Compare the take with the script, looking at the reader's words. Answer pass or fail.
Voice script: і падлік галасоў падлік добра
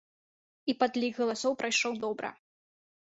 fail